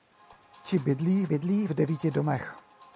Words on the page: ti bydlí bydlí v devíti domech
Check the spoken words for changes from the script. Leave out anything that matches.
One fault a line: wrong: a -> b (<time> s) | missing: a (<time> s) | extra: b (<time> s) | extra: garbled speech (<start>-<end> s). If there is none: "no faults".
no faults